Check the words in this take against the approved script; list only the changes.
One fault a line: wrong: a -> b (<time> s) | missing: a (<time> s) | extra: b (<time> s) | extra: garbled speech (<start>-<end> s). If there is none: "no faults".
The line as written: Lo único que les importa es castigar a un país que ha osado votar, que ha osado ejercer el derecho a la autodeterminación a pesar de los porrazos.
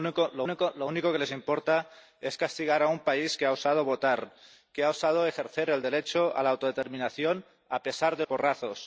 extra: lo (0.5 s)
missing: los (8.2 s)